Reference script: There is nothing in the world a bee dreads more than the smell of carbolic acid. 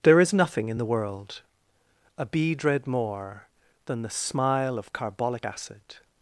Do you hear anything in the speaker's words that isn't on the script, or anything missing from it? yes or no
yes